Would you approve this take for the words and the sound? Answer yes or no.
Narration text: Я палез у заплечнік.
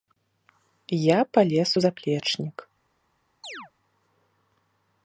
no